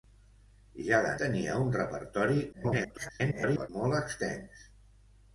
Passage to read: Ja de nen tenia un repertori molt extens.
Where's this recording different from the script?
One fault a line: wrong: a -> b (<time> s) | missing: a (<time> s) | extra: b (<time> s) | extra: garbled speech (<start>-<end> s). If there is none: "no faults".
missing: nen (1.1 s)
extra: garbled speech (2.5-3.7 s)